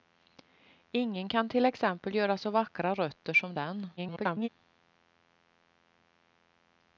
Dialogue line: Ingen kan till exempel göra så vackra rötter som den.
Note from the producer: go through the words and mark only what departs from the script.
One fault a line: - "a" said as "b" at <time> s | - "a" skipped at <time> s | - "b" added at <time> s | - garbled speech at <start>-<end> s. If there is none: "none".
- garbled speech at 4.0-4.5 s